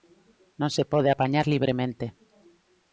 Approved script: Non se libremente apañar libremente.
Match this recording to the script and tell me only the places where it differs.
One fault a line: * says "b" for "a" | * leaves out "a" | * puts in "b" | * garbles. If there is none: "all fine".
* says "pode" for "libremente"